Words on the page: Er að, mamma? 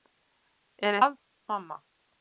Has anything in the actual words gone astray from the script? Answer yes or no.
no